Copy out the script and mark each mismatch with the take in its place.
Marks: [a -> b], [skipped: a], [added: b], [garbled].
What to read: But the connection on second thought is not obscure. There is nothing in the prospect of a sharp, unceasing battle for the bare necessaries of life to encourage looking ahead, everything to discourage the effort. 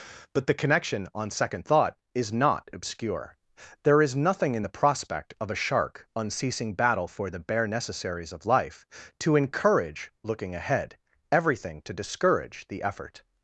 But the connection on second thought is not obscure. There is nothing in the prospect of a [sharp, -> shark] unceasing battle for the bare necessaries of life to encourage looking ahead, everything to discourage the effort.